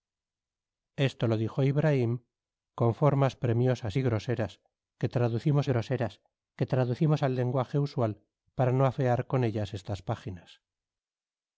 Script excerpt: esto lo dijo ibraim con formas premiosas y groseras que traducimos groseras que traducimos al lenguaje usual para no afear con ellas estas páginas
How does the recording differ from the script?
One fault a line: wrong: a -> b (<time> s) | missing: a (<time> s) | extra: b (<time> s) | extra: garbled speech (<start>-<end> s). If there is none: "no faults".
no faults